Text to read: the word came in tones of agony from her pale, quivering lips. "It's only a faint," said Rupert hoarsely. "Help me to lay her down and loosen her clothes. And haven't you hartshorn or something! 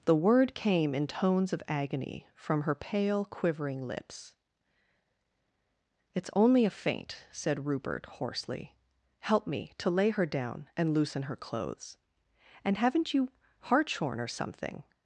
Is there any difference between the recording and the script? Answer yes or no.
no